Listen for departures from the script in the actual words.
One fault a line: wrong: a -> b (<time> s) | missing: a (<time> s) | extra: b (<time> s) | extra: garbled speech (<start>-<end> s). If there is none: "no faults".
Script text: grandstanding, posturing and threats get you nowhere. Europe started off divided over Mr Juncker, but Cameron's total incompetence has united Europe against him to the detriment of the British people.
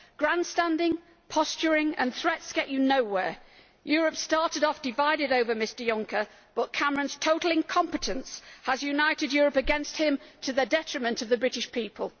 no faults